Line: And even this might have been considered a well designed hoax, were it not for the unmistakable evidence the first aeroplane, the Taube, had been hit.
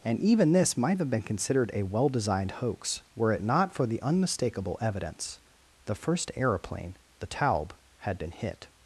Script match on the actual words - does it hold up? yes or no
yes